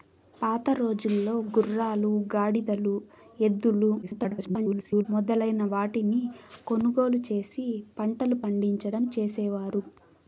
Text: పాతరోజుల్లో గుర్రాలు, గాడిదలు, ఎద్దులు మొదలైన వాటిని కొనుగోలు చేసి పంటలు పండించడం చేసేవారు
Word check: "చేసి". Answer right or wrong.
right